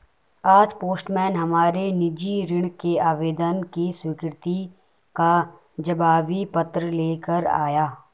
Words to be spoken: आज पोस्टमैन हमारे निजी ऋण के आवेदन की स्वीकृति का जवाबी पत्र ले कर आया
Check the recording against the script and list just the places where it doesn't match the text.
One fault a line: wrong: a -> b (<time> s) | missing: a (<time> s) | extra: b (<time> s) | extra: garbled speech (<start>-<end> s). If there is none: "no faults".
no faults